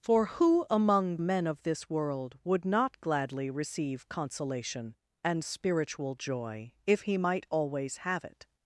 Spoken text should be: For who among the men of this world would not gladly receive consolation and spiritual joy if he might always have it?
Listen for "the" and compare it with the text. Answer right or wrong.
wrong